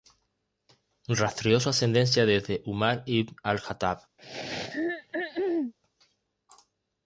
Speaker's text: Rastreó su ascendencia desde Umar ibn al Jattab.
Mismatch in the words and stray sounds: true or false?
true